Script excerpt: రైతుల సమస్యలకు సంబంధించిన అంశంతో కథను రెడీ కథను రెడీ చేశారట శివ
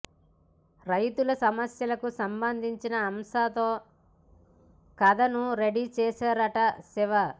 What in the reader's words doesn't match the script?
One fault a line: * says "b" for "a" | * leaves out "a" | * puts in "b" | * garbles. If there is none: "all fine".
* leaves out "కథను రెడీ"